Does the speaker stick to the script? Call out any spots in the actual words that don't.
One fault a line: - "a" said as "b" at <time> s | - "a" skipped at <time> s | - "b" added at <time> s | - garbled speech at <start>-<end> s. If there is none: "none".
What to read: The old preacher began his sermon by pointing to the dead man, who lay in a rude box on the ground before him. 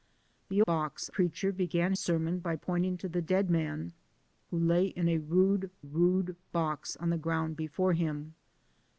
- "old" said as "box" at 0.7 s
- "his" skipped at 1.9 s
- "rude" added at 5.8 s